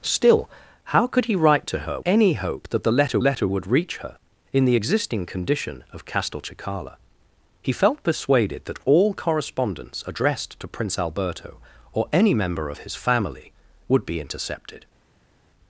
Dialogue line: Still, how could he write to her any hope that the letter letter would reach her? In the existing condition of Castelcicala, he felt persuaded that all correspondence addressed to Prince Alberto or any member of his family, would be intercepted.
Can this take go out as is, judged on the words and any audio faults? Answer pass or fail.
pass